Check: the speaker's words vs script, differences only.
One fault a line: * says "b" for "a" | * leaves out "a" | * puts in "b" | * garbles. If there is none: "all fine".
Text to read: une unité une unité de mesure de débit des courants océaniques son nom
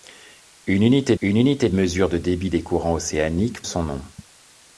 all fine